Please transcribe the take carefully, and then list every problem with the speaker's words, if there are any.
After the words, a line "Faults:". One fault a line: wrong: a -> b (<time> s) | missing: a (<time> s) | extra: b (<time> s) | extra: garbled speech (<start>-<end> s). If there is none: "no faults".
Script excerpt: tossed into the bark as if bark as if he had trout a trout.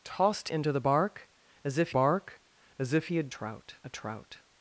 tossed into the bark as if bark as if he had trout a trout.
Faults:
no faults